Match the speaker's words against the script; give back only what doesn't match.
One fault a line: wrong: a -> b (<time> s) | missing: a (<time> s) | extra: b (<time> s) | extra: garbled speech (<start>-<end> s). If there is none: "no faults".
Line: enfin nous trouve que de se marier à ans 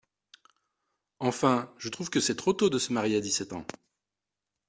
wrong: nous -> je (1.8 s)
extra: c'est trop tôt (2.2 s)
extra: dix sept (3.2 s)